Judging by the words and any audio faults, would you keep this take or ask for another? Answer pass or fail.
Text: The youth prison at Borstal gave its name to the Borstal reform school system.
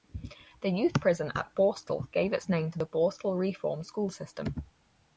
pass